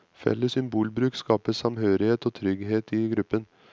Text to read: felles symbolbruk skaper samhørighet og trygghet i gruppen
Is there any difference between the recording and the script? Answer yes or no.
no